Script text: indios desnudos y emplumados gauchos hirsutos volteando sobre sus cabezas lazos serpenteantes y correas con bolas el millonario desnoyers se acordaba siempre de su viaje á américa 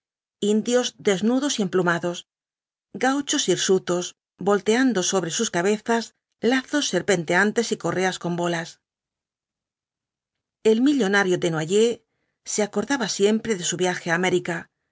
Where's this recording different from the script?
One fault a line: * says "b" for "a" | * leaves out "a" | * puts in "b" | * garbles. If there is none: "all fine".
all fine